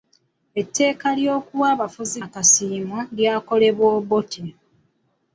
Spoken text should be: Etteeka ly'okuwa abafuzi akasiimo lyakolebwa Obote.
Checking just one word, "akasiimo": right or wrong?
right